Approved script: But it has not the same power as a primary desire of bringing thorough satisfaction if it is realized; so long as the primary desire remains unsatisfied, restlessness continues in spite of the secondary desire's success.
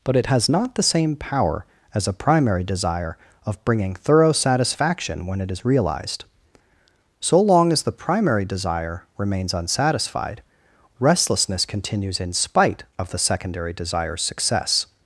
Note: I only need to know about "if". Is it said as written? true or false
false